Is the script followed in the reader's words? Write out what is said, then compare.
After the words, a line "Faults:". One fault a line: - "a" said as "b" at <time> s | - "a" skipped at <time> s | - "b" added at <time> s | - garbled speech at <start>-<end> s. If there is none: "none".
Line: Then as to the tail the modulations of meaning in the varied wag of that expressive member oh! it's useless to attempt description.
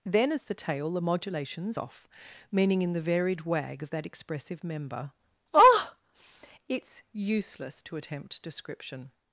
Then as the tail the modulations off meaning in the varied wag of that expressive member oh! it's useless to attempt description.
Faults:
- "to" skipped at 0.4 s
- "of" said as "off" at 1.7 s